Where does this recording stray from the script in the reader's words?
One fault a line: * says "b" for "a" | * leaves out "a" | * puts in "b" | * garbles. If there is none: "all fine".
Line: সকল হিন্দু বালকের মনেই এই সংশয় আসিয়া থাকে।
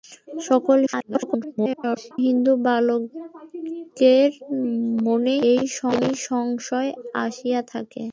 * garbles